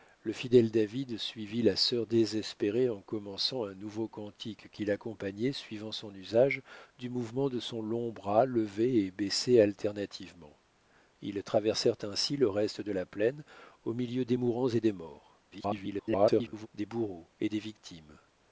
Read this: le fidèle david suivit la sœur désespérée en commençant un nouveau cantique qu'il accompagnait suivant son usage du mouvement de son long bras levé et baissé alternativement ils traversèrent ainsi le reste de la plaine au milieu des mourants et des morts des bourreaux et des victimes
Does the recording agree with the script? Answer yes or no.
no